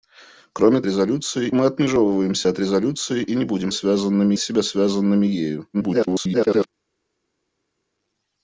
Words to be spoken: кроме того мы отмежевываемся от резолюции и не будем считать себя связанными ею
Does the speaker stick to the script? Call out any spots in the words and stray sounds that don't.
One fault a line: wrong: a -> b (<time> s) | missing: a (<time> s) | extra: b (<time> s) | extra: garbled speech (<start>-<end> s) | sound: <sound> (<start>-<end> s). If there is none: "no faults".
wrong: того -> резолюции (0.9 s)
wrong: считать -> связанными (3.7 s)
extra: garbled speech (5.7-6.7 s)